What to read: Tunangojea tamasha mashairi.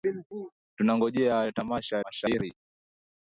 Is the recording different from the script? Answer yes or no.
no